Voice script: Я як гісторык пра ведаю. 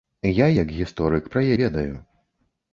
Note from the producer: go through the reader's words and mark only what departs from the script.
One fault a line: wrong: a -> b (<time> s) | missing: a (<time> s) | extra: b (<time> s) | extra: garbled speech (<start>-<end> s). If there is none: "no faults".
no faults